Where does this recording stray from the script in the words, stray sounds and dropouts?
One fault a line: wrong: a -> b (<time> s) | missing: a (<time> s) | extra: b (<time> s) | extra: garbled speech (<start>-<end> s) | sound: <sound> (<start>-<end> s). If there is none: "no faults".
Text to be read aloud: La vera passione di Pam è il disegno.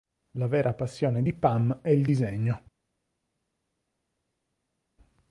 no faults